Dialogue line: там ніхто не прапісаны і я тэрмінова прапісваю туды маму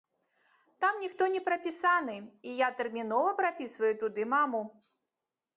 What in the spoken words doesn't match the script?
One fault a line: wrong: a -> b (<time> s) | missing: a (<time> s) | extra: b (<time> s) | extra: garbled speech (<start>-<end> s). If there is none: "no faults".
no faults